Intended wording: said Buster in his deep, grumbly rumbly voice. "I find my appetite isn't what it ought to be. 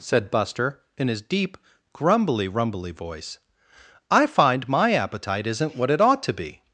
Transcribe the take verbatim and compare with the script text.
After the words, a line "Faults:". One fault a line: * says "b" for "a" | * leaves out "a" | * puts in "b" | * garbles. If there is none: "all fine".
said Buster in his deep, grumbly rumbly voice. "I find my appetite isn't what it ought to be.
Faults:
all fine